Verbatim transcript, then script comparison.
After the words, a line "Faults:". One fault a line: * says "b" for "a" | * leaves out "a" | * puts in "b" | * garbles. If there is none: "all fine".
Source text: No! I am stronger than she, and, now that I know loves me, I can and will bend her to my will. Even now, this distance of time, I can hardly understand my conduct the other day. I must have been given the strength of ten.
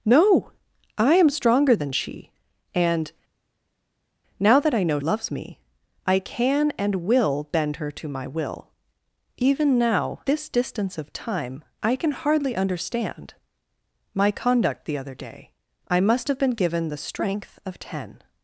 No! I am stronger than she, and, now that I know loves me, I can and will bend her to my will. Even now, this distance of time, I can hardly understand my conduct the other day. I must have been given the strength of ten.
Faults:
all fine